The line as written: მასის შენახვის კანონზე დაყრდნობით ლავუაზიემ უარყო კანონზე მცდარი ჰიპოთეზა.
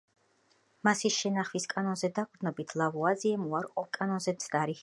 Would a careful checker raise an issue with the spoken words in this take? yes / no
no